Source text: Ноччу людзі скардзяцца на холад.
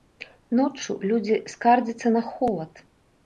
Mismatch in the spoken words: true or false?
false